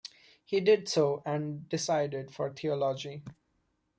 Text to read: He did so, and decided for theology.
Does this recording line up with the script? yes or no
yes